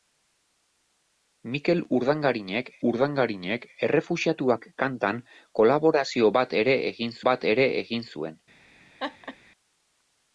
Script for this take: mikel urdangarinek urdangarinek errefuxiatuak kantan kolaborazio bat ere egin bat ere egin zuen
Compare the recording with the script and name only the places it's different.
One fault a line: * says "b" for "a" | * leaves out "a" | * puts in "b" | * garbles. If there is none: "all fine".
all fine